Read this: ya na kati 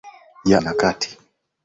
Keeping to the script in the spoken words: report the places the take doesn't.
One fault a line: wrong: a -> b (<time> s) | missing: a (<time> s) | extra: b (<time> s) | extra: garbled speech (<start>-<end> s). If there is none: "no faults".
no faults